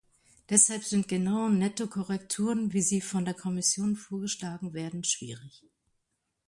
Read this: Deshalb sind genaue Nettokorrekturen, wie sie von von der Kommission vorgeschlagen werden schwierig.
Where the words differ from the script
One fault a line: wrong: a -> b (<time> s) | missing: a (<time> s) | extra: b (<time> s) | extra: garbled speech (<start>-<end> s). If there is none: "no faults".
missing: von (3.2 s)